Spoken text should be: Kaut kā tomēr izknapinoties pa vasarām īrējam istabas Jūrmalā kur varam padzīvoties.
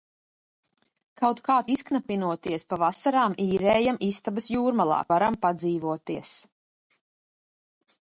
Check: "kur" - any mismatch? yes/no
yes